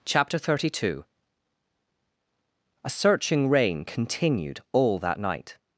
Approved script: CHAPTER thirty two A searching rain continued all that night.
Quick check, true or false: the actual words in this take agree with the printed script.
true